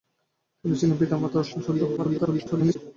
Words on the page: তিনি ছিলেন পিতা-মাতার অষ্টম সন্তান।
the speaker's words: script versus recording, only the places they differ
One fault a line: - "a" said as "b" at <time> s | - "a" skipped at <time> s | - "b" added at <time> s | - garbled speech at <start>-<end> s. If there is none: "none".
- garbled speech at 2.0-2.8 s